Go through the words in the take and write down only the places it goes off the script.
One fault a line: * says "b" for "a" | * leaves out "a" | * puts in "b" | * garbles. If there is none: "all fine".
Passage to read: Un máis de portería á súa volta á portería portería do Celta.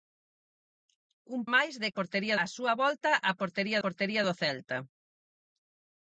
all fine